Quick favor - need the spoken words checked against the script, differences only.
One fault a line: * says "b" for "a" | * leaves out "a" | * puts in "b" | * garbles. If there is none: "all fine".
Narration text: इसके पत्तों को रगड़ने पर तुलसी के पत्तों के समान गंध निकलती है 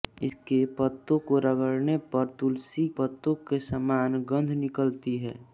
* leaves out "के"